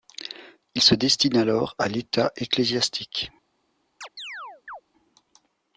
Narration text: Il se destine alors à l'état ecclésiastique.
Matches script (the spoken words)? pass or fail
pass